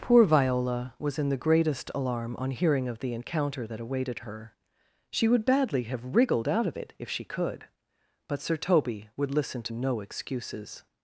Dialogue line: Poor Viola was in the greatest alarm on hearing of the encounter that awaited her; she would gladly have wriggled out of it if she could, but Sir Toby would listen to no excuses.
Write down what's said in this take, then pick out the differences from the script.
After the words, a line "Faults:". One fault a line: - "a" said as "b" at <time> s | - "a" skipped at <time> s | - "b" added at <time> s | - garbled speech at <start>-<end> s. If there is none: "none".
Poor Viola was in the greatest alarm on hearing of the encounter that awaited her; she would badly have wriggled out of it if she could, but Sir Toby would listen to no excuses.
Faults:
- "gladly" said as "badly" at 5.4 s